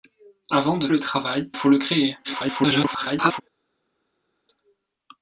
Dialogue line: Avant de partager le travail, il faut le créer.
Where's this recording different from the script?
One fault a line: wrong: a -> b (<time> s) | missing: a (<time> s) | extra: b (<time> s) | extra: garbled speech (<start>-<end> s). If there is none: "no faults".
missing: partager (0.9 s)
missing: il (1.5 s)
extra: garbled speech (2.2-3.4 s)